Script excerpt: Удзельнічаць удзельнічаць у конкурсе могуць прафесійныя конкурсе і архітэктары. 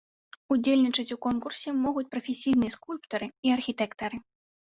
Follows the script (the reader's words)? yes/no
no